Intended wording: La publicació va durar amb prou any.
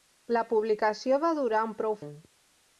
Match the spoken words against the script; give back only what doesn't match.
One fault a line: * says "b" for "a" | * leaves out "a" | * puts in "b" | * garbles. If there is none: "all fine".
all fine